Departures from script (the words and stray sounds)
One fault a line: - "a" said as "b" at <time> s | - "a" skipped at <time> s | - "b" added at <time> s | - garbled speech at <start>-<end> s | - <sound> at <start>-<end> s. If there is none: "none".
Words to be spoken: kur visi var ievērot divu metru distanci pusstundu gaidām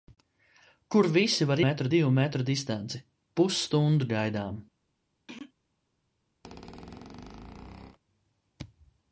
- "ievērot" said as "metru" at 1.6 s
- throat clearing at 5.3-5.5 s
- squeak at 6.4-8.0 s